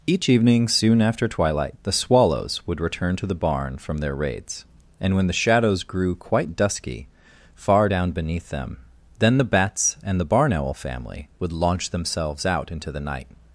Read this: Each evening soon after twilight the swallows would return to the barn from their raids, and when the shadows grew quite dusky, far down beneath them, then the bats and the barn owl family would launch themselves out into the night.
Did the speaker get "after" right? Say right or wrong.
right